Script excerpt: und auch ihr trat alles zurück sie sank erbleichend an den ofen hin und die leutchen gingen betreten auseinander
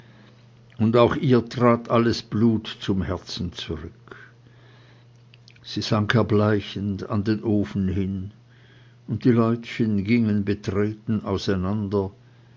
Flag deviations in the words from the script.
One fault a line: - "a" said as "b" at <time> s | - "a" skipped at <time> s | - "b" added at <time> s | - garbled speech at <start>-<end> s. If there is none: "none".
- "blut zum herzen" added at 2.2 s